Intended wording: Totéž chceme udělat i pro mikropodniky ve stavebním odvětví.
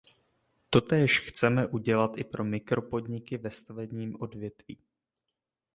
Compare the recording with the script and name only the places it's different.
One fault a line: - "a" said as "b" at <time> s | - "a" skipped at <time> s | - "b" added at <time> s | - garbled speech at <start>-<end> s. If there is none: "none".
none